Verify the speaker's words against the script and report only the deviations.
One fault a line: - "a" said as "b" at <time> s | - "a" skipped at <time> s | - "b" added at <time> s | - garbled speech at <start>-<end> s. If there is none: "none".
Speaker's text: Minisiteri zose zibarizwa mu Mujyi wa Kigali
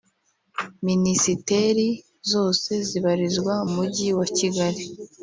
- "mu" skipped at 3.5 s